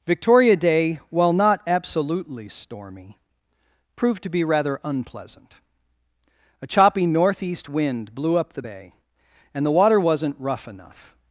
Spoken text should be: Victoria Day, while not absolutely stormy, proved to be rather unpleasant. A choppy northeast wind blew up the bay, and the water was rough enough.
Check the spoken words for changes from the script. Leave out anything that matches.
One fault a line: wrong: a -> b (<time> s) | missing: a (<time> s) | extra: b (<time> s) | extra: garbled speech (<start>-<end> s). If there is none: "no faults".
wrong: was -> wasn't (10.0 s)